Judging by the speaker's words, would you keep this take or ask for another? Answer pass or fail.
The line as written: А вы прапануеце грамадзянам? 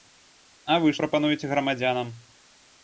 pass